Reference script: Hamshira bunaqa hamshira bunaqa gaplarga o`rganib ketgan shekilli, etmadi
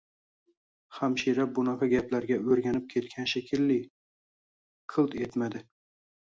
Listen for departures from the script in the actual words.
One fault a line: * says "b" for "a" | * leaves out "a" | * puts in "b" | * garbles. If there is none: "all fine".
* leaves out "hamshira bunaqa"
* puts in "qilt"